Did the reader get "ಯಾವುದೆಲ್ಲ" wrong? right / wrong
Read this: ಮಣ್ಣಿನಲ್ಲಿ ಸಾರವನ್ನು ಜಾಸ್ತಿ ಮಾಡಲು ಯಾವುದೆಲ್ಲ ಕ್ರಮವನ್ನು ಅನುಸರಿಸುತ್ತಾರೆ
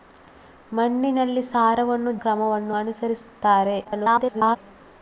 wrong